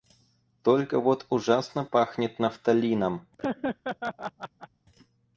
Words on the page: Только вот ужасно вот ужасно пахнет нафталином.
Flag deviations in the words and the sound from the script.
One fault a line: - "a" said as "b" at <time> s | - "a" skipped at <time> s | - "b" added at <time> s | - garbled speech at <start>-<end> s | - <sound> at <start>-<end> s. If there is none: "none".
- "вот ужасно" skipped at 1.9 s
- laugh at 3.4-4.7 s